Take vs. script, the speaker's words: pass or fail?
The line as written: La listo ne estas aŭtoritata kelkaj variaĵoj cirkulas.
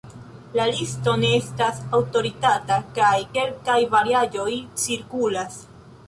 fail